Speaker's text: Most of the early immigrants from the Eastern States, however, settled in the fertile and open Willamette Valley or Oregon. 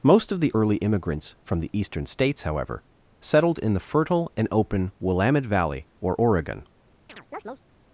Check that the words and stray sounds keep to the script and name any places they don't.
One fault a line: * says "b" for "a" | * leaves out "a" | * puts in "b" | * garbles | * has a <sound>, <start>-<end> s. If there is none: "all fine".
* has a chirp, 7.1-7.6 s